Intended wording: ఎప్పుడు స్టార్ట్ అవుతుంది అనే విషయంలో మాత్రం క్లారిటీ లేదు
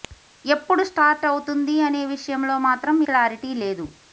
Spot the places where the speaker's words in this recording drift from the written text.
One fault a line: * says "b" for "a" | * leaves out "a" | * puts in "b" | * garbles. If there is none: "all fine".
all fine